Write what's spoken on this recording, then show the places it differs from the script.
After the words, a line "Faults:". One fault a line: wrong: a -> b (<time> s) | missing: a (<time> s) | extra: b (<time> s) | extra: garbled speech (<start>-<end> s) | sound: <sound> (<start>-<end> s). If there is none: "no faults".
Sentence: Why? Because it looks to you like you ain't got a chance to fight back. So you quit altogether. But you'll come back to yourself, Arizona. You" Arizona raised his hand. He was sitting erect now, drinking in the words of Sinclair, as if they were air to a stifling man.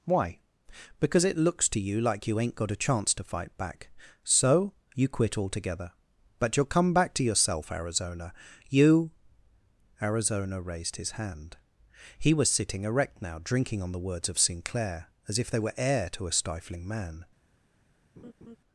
Why? Because it looks to you like you ain't got a chance to fight back. So you quit altogether. But you'll come back to yourself, Arizona. You" Arizona raised his hand. He was sitting erect now, drinking on the words of Sinclair, as if they were air to a stifling man.
Faults:
wrong: in -> on (13.8 s)
sound: laugh (18.2-18.6 s)